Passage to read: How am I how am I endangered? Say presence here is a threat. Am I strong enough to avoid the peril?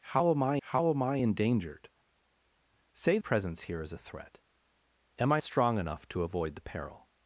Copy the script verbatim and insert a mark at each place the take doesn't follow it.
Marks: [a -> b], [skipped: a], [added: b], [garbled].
How am I how am I endangered? Say presence here is a threat. Am I strong enough to avoid the peril?